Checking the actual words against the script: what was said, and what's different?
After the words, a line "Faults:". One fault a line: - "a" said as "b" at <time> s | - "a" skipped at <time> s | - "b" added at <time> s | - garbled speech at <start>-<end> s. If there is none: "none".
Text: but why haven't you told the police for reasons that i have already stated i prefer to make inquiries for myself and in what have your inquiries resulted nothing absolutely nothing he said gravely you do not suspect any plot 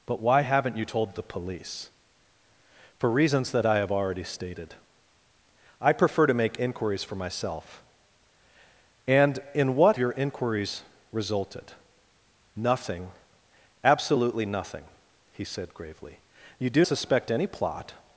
but why haven't you told the police for reasons that i have already stated i prefer to make inquiries for myself and in what your inquiries resulted nothing absolutely nothing he said gravely you do suspect any plot
Faults:
- "have" skipped at 10.0 s
- "not" skipped at 16.8 s